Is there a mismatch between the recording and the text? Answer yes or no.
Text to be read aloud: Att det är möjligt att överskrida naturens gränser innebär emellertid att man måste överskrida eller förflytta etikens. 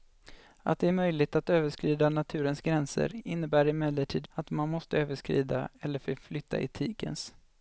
no